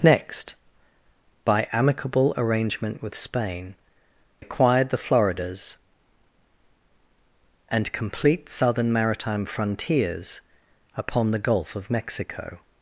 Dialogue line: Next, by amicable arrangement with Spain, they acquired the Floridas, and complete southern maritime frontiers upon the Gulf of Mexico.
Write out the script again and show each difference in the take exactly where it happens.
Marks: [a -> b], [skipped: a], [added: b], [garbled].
Next, by amicable arrangement with Spain, [skipped: they] acquired the Floridas, and complete southern maritime frontiers upon the Gulf of Mexico.